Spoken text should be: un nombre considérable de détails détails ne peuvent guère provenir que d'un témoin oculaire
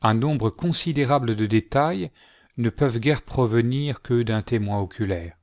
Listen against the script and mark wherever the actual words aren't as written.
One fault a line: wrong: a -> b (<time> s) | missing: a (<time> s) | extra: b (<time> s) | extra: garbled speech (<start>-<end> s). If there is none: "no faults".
missing: détails (2.1 s)